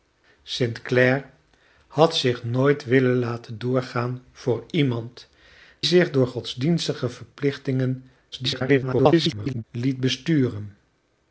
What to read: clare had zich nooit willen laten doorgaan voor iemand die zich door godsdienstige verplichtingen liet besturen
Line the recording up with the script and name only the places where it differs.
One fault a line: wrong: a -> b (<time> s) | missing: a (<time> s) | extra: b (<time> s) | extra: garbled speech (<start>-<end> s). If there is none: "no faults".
missing: die (5.3 s)
extra: garbled speech (8.3-9.6 s)